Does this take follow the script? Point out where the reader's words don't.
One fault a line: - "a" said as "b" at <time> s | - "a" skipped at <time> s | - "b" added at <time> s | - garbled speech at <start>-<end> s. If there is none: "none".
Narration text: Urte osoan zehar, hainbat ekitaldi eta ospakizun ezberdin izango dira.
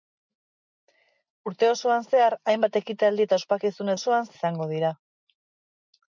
- "ezberdin" said as "osoan" at 4.0 s